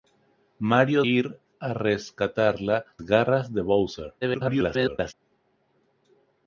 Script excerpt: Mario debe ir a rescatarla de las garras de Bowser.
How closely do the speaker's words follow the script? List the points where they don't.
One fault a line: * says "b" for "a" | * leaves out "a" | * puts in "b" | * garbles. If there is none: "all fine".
* leaves out "debe"
* leaves out "de las"
* garbles